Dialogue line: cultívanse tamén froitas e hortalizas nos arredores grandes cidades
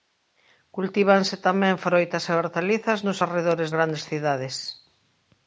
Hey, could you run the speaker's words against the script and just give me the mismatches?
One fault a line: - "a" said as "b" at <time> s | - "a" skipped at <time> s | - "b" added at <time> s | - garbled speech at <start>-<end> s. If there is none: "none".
none